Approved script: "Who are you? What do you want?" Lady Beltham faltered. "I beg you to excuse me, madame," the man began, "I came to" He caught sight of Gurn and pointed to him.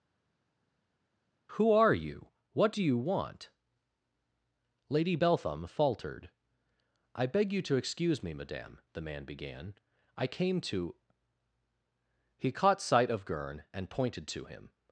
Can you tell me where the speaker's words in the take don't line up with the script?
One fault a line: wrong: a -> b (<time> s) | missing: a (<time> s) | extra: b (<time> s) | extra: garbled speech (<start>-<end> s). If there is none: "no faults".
no faults